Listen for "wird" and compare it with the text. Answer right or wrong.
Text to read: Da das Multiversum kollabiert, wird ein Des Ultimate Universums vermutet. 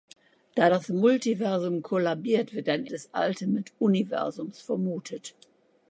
right